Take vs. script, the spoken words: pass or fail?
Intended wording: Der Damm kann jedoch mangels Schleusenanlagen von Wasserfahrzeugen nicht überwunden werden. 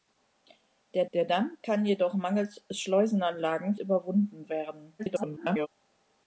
fail